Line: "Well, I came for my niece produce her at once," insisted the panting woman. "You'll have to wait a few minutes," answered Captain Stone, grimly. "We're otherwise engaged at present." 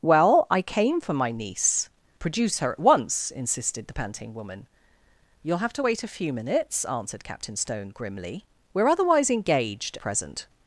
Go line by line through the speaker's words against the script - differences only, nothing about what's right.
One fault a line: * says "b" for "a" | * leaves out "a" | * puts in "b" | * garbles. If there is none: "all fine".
* leaves out "at"